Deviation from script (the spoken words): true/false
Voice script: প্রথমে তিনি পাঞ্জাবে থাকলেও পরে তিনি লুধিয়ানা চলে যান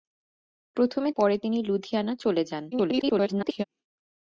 true